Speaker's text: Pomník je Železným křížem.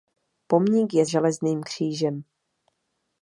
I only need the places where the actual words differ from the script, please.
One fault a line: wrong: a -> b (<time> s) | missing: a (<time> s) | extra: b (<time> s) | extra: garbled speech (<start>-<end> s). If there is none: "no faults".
no faults